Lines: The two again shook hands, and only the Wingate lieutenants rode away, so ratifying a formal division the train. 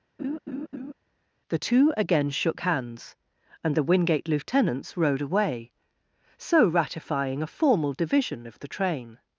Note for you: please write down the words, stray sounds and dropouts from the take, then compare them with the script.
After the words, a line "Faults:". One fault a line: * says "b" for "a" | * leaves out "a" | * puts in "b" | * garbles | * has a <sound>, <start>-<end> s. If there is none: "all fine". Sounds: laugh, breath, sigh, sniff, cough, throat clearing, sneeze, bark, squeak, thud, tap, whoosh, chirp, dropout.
The two again shook hands, and the Wingate lieutenants rode away, so ratifying a formal division of the train.
Faults:
* has a laugh, 0.2-0.9 s
* leaves out "only"
* puts in "of"